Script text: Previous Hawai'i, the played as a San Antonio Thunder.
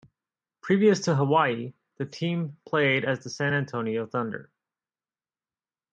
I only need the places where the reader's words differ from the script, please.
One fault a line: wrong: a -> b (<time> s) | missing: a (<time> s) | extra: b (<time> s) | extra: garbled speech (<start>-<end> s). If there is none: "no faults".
extra: to (1.0 s)
extra: team (2.1 s)
wrong: a -> the (3.2 s)